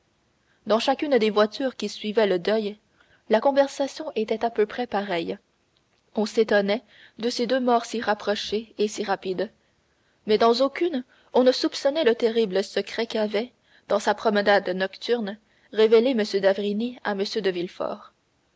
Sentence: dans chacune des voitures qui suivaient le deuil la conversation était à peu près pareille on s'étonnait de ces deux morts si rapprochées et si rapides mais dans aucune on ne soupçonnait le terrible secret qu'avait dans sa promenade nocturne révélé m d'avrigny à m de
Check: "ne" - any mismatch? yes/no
no